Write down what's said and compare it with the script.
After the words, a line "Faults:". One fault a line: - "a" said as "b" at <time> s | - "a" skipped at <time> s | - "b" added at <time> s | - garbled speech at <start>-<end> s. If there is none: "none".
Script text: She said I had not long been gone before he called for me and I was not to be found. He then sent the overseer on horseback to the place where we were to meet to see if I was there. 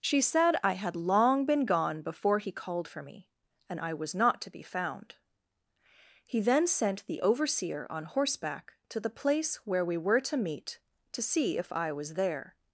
She said I had long been gone before he called for me and I was not to be found. He then sent the overseer on horseback to the place where we were to meet to see if I was there.
Faults:
- "not" skipped at 0.9 s